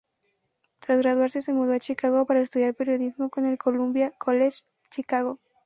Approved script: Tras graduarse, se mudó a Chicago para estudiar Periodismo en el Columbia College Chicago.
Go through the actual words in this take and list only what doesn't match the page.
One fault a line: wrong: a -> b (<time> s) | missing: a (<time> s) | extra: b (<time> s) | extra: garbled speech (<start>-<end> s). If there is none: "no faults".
no faults